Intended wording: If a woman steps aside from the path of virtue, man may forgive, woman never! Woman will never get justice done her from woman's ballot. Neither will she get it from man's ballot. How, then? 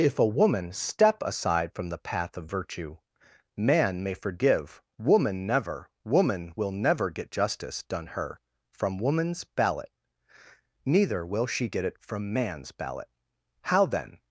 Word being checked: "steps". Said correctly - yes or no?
no